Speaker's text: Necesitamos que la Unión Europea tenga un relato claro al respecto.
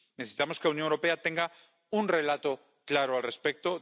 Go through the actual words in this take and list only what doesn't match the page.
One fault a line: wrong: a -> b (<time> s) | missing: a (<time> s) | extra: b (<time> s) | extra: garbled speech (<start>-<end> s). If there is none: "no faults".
no faults